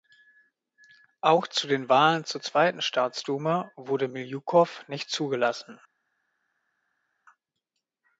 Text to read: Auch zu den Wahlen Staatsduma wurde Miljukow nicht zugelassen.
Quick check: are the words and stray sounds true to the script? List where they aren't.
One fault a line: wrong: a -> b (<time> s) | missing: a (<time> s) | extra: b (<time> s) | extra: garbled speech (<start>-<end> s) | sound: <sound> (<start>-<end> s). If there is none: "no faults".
extra: zur zweiten (2.2 s)